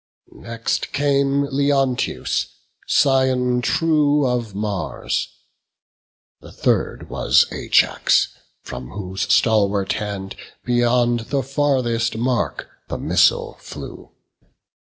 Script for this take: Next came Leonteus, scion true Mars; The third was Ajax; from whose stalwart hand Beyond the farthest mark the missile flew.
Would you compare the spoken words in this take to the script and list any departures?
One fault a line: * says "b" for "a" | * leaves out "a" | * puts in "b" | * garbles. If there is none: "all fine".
* puts in "of"